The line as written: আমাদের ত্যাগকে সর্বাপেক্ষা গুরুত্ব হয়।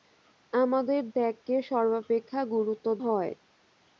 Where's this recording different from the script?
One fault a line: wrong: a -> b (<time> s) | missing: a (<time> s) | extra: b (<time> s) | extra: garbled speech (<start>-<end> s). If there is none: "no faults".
no faults